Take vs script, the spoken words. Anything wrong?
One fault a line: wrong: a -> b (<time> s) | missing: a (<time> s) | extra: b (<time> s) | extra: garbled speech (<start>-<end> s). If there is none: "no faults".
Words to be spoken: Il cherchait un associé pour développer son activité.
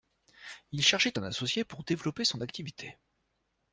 no faults